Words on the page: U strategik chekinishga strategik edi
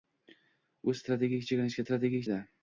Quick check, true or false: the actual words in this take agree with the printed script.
true